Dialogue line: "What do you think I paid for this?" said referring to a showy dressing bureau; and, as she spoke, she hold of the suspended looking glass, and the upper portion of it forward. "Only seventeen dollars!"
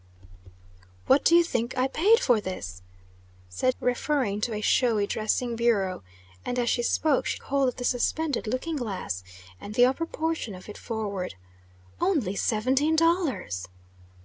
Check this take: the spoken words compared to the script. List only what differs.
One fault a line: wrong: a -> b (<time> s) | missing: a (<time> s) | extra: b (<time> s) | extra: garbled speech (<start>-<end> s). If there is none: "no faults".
no faults